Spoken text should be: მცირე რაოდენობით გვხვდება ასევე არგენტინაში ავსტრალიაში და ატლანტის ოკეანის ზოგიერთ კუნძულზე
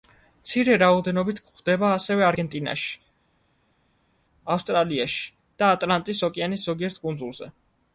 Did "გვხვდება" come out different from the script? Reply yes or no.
no